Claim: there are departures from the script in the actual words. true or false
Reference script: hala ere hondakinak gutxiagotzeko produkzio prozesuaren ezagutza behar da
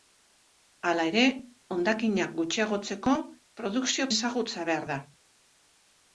true